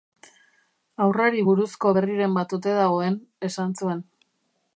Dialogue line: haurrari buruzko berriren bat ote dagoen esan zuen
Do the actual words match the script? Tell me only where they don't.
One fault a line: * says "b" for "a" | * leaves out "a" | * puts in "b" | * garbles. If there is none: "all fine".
all fine